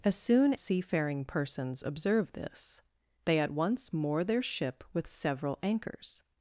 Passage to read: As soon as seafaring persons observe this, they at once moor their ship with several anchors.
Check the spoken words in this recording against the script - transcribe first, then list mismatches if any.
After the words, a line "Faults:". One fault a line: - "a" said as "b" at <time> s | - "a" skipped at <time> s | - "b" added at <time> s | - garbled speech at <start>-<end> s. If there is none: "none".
As soon seafaring persons observe this, they at once moor their ship with several anchors.
Faults:
- "as" skipped at 0.6 s